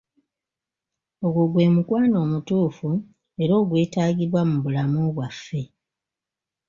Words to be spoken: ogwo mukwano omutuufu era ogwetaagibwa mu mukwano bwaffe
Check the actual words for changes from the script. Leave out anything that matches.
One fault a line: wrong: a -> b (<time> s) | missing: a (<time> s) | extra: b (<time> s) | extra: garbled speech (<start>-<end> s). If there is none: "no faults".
extra: gwe (1.5 s)
wrong: mukwano -> bulamu (4.6 s)